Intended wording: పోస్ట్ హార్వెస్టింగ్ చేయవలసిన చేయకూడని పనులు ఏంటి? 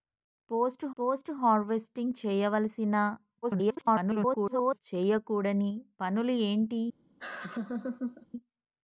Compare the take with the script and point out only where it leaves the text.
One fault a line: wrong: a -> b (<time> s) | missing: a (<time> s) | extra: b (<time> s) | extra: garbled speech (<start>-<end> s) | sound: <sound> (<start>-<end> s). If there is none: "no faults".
extra: పోస్ట్ (1.0 s)
extra: garbled speech (3.4-4.8 s)
sound: laugh (7.2-8.3 s)